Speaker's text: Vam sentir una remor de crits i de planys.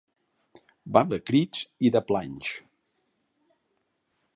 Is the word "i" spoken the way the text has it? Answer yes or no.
yes